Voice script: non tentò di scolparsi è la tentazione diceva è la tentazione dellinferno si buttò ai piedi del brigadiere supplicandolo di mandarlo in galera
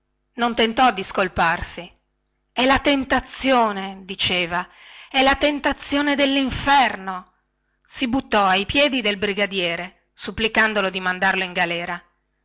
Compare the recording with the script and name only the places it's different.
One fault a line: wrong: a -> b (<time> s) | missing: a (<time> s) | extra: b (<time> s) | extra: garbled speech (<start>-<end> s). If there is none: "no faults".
no faults